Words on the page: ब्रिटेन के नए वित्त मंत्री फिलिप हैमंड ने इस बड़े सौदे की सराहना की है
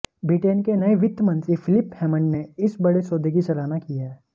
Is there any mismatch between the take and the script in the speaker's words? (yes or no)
no